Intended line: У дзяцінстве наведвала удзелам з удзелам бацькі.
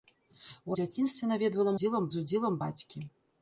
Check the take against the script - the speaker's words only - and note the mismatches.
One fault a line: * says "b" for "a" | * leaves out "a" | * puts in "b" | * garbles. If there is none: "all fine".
all fine